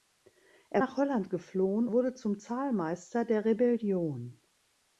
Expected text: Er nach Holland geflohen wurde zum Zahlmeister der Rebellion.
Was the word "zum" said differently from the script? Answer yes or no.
no